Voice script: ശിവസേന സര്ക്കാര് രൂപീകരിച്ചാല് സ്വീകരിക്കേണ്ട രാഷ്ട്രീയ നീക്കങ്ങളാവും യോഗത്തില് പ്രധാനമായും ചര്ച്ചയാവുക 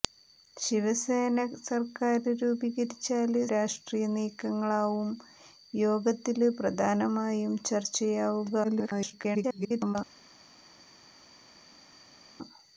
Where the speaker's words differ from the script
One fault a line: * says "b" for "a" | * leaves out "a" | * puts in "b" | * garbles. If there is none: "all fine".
* leaves out "സ്വീകരിക്കേണ്ട"
* garbles